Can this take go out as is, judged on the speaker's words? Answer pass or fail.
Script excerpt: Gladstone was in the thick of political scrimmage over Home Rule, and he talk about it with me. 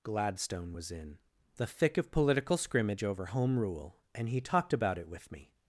fail